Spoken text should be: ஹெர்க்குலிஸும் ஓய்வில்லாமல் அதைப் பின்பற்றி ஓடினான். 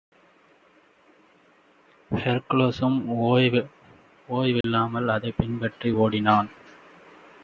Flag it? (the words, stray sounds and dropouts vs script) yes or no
yes